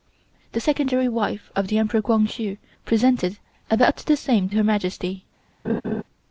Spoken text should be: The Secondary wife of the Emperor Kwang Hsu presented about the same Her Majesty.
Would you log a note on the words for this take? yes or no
no